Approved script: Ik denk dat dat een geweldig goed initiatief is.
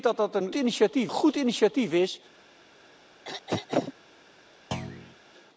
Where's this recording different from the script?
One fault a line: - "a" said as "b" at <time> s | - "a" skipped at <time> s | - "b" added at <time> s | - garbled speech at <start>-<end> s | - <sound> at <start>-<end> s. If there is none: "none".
- "geweldig" said as "initiatief" at 0.5 s
- throat clearing at 3.2-3.9 s
- thud at 4.7-5.2 s